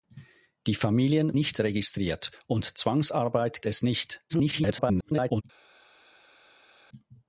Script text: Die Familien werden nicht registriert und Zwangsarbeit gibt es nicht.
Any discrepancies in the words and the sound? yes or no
yes